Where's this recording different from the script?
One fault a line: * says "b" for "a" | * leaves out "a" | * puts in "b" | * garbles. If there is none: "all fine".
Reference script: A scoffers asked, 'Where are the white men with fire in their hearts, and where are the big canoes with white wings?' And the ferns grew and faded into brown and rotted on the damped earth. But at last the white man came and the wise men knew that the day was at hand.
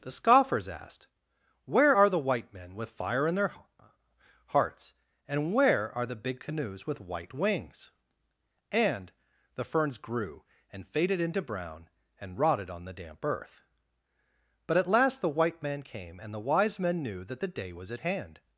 * says "The" for "A"
* says "damp" for "damped"